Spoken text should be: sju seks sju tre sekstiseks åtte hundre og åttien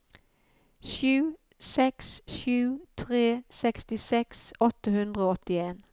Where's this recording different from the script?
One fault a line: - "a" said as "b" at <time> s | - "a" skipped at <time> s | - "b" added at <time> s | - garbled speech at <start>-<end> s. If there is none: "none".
none